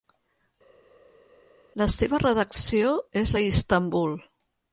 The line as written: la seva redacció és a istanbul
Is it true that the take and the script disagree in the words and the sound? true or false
false